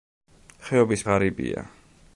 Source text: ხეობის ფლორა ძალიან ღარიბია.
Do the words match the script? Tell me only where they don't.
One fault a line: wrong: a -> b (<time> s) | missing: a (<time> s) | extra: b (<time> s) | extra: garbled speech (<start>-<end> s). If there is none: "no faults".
missing: ფლორა ძალიან (1.0 s)